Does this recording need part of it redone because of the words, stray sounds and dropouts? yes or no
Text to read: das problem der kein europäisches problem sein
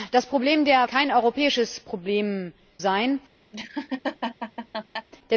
yes